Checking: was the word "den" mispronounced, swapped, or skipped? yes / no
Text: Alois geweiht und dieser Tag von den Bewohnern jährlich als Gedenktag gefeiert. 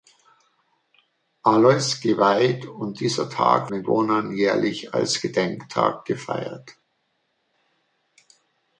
yes